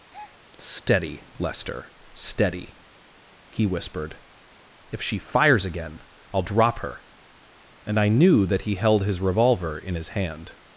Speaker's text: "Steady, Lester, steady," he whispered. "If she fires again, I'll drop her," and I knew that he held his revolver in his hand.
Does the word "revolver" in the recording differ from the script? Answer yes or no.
no